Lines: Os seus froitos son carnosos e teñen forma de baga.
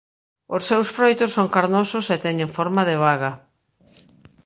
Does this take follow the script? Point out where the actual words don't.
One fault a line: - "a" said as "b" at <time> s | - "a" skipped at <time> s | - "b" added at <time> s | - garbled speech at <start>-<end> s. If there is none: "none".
none